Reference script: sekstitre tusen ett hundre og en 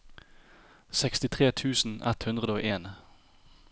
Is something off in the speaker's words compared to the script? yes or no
no